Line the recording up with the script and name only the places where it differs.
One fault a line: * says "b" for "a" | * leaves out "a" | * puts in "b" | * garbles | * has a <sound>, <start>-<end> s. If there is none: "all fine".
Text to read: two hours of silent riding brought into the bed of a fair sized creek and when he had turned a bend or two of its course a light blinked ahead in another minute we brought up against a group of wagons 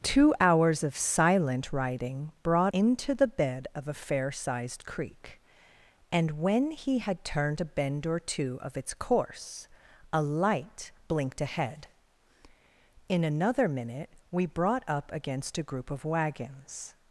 all fine